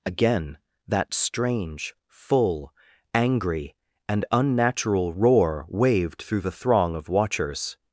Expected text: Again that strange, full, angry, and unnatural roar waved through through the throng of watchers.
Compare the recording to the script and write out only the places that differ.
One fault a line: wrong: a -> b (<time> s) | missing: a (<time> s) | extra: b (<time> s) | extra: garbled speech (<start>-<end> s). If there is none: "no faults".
missing: through (6.4 s)